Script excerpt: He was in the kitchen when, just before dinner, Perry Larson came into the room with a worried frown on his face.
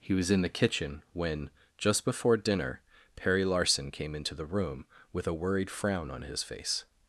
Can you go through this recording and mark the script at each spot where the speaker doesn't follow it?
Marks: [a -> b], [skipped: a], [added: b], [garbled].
He was in the kitchen when, just before dinner, Perry Larson came into the room with a worried frown on his face.